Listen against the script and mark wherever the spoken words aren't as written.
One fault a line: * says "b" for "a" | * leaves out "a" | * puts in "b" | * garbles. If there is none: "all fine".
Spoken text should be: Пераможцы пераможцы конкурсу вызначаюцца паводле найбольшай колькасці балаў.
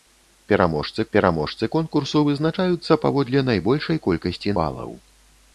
all fine